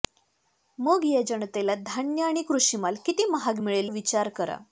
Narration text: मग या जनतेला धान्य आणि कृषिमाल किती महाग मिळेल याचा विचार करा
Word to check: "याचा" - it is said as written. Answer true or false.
false